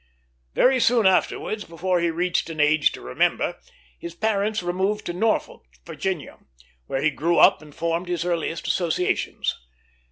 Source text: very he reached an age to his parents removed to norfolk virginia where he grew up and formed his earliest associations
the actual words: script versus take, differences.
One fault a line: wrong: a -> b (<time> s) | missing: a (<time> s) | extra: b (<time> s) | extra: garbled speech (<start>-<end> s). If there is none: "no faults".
extra: soon afterwards before (0.8 s)
extra: remember (3.0 s)